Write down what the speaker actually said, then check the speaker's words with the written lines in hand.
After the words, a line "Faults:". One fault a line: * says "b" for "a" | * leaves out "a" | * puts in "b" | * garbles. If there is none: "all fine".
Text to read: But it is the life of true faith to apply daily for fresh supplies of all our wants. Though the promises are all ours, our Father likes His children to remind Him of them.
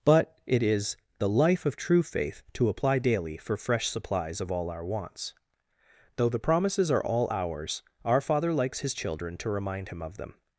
But it is the life of true faith to apply daily for fresh supplies of all our wants. Though the promises are all ours, our Father likes His children to remind Him of them.
Faults:
all fine